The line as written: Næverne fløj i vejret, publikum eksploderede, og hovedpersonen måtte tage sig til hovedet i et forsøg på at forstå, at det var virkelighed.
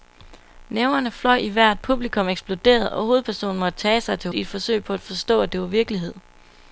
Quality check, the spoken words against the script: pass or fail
fail